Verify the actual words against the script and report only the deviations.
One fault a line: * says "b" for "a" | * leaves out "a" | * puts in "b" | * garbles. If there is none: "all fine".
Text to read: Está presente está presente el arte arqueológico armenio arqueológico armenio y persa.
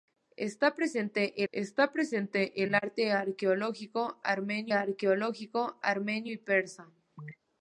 all fine